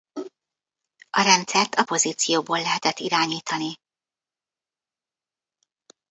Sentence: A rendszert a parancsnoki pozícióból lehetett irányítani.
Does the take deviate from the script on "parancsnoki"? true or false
true